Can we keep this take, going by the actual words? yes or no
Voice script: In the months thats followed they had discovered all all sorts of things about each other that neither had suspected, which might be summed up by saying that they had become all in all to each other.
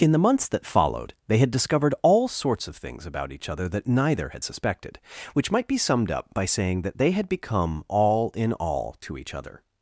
no